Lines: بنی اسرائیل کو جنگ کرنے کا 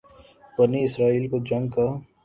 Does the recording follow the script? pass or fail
fail